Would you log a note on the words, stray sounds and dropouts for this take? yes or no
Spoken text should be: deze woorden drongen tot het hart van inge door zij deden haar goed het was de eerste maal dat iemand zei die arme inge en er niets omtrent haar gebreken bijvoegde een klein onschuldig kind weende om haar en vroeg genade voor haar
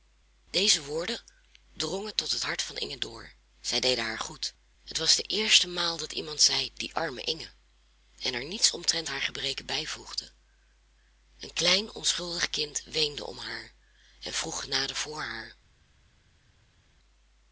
no